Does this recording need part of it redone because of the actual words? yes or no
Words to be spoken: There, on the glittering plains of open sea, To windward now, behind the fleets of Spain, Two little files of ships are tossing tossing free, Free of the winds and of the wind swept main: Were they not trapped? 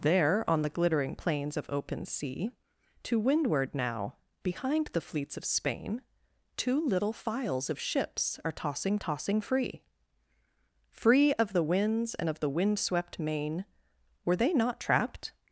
no